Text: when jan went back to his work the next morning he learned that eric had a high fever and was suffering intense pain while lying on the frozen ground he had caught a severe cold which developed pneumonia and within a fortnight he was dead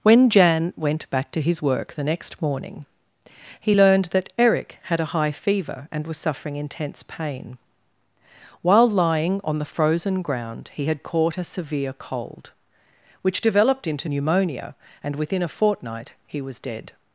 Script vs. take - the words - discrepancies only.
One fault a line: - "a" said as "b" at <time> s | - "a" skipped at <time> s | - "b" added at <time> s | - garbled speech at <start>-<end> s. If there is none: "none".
- "into" added at 13.8 s